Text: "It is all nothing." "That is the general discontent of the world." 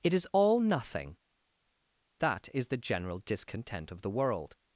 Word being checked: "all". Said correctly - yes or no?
yes